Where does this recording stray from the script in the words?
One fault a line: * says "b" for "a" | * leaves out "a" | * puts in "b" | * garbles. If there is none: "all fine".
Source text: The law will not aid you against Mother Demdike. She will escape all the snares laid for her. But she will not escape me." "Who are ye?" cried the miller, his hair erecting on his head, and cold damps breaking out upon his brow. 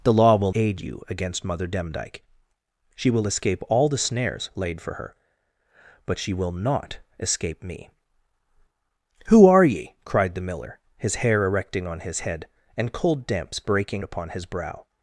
* leaves out "not"
* leaves out "out"